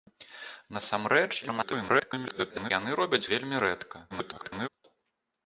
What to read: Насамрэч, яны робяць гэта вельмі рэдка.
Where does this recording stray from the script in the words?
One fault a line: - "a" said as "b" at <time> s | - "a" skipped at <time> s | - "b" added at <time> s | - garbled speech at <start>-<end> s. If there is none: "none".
- garbled speech at 1.4-2.7 s
- "гэта" skipped at 3.3 s
- garbled speech at 4.1-4.7 s